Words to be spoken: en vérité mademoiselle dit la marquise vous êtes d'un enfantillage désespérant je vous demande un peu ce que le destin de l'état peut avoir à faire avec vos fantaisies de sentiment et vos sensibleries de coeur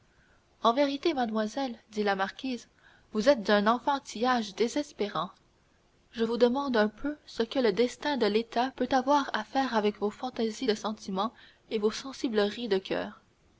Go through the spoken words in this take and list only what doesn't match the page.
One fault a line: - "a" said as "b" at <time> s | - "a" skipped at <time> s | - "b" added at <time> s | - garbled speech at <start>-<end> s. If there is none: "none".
none